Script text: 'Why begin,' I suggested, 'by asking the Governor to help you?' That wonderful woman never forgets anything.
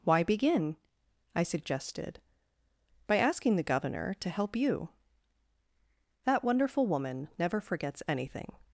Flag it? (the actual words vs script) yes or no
no